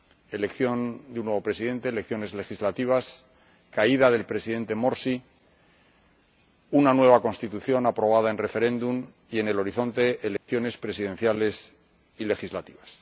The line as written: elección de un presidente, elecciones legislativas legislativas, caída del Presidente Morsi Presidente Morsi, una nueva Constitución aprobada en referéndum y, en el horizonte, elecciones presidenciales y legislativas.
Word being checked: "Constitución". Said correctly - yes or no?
yes